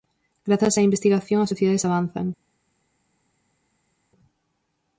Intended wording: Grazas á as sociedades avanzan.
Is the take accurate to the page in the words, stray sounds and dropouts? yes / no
no